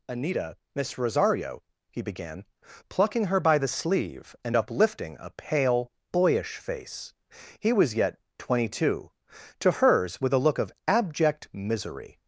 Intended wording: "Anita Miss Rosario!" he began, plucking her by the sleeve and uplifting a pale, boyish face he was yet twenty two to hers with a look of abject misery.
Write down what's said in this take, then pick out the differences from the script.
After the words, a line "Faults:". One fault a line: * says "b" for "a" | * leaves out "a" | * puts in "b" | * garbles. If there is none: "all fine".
"Anita Miss Rosario!" he began, plucking her by the sleeve and uplifting a pale, boyish face he was yet twenty two to hers with a look of abject misery.
Faults:
all fine